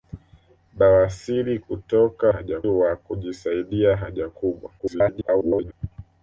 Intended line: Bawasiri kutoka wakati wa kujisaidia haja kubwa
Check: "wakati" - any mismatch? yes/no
yes